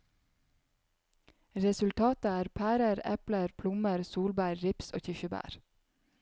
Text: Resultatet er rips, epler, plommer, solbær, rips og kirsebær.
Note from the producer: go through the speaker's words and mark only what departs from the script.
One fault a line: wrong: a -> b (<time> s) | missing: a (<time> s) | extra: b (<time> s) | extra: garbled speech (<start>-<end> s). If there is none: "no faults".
wrong: rips -> pærer (2.6 s)